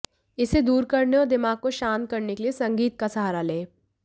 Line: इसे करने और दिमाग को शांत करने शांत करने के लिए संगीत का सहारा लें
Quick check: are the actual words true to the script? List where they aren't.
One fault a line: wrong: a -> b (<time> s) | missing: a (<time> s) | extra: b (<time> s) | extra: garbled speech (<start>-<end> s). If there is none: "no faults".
extra: दूर (0.6 s)
missing: शांत करने (2.3 s)